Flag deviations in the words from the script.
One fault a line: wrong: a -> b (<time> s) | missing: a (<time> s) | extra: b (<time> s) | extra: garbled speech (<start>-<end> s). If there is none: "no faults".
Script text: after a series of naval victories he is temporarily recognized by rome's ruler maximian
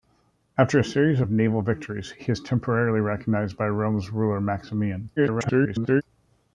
extra: garbled speech (5.2-6.0 s)